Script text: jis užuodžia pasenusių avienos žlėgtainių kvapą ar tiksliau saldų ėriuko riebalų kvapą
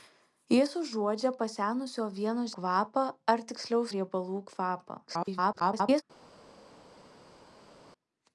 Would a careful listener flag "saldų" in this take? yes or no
yes